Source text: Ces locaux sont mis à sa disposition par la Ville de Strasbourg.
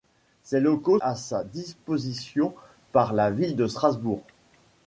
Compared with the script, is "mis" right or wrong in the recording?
wrong